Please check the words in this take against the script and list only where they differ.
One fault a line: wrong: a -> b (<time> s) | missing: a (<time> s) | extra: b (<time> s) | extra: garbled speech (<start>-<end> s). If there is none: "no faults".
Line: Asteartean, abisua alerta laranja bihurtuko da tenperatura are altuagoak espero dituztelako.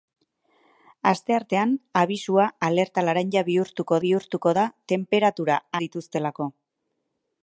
extra: bihurtuko (4.1 s)
missing: are altuagoak espero (5.6 s)